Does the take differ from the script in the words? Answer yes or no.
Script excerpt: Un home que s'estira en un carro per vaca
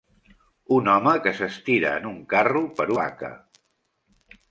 no